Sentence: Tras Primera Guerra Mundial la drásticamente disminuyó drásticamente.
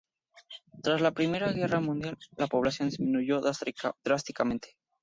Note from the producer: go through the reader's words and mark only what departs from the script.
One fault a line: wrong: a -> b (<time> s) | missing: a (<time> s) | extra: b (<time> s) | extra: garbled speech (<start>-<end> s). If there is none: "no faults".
extra: la (1.0 s)
wrong: drásticamente -> población (2.4 s)